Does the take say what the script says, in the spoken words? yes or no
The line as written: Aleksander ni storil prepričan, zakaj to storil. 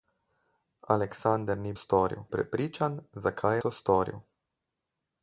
yes